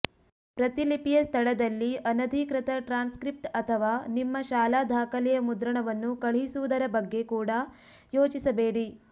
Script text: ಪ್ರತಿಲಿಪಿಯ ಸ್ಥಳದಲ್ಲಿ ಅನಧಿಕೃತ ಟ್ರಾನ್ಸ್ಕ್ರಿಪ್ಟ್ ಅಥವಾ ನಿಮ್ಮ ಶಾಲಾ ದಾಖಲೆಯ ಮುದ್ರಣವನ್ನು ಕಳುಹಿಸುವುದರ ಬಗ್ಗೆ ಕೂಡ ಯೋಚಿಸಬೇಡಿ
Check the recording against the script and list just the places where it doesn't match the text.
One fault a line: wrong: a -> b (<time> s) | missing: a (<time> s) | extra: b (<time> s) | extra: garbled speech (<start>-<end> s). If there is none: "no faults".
no faults